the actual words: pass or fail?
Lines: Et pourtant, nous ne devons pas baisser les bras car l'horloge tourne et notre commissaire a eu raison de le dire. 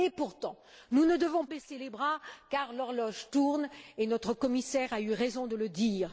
fail